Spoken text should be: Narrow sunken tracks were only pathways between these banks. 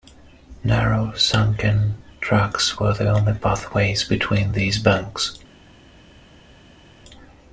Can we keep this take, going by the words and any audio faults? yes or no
no